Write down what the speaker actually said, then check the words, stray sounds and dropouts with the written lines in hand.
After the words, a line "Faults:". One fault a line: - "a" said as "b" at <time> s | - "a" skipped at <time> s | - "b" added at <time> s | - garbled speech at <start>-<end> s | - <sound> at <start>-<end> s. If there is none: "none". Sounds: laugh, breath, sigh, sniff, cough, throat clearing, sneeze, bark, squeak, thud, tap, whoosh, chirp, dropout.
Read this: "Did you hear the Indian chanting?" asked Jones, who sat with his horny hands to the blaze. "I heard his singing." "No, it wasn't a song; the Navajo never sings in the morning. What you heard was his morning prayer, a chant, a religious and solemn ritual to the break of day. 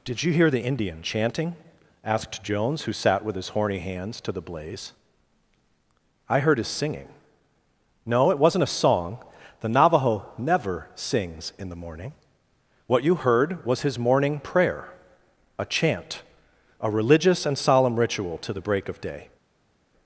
"Did you hear the Indian chanting?" asked Jones, who sat with his horny hands to the blaze. "I heard his singing." "No, it wasn't a song; the Navajo never sings in the morning. What you heard was his morning prayer, a chant, a religious and solemn ritual to the break of day.
Faults:
none